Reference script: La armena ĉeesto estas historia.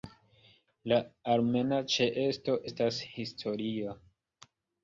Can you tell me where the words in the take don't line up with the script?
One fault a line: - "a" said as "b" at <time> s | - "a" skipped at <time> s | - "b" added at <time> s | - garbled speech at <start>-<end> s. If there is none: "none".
none